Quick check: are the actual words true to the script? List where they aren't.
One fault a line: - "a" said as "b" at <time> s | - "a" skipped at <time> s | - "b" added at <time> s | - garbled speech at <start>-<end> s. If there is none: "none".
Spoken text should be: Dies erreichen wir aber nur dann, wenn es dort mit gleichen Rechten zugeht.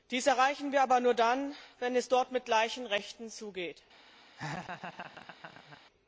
none